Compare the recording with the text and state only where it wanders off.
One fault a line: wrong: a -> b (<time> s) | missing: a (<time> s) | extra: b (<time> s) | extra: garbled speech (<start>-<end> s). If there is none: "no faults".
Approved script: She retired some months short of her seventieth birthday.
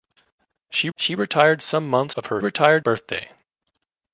extra: she (1.0 s)
missing: short (2.2 s)
wrong: seventieth -> retired (2.4 s)